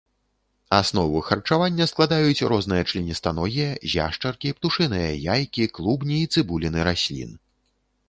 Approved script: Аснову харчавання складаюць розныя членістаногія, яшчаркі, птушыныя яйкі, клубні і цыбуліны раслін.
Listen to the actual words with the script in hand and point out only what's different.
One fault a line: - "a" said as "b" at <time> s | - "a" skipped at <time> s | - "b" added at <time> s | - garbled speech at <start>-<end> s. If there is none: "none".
none